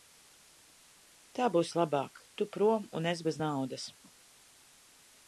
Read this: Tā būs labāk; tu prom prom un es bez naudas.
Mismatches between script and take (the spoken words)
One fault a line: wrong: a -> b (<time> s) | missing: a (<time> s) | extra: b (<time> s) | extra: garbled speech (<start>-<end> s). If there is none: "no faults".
missing: prom (2.9 s)